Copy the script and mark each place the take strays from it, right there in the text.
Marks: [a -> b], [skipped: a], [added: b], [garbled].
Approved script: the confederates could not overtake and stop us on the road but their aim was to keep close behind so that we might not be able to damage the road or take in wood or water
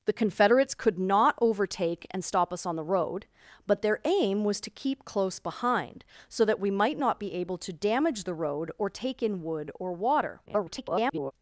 the confederates could not overtake and stop us on the road but their aim was to keep close behind so that we might not be able to damage the road or take in wood or water [garbled]